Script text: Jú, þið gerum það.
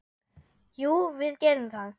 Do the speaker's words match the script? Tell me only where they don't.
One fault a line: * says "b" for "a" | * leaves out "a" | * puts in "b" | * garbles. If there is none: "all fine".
* says "við" for "þið"